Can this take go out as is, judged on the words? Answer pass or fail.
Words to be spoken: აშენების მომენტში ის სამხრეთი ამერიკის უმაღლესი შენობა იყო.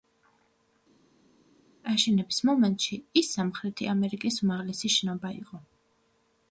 pass